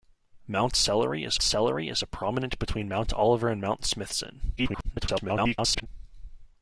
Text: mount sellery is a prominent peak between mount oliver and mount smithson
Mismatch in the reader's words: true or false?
true